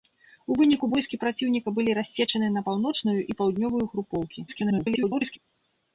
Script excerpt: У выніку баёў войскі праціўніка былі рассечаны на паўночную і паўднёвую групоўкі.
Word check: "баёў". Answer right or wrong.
wrong